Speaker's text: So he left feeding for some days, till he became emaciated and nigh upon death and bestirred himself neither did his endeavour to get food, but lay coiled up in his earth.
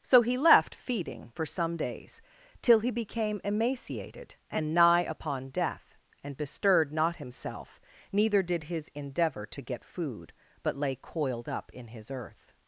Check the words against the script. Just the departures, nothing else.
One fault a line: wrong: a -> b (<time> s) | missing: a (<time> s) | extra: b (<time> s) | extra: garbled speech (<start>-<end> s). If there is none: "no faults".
extra: not (6.9 s)